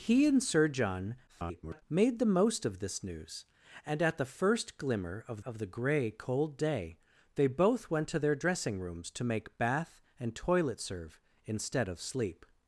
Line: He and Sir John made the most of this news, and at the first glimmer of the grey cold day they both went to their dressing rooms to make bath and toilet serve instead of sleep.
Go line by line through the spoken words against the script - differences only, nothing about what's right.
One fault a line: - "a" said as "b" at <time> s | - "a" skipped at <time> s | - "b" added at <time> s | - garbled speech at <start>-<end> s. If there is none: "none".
- garbled speech at 1.3-1.8 s
- "of" added at 5.4 s